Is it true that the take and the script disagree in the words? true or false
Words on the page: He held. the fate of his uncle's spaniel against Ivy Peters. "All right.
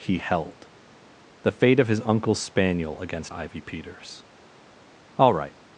false